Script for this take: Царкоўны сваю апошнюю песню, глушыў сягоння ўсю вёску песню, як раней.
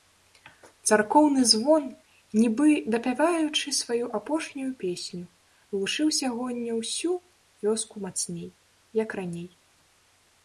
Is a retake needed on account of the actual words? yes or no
yes